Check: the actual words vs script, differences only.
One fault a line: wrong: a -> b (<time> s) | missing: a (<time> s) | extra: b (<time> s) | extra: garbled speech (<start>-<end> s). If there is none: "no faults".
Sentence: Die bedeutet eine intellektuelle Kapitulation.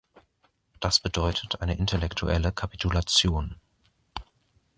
wrong: Die -> Das (0.8 s)